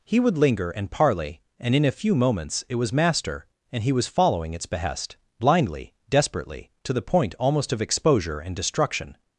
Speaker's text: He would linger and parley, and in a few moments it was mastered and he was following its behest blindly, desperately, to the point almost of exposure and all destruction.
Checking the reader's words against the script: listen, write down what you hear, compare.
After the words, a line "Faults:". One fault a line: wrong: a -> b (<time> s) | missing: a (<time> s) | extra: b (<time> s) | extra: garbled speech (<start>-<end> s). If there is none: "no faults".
He would linger and parley, and in a few moments it was master and he was following its behest blindly, desperately, to the point almost of exposure and destruction.
Faults:
wrong: mastered -> master (2.9 s)
missing: all (8.6 s)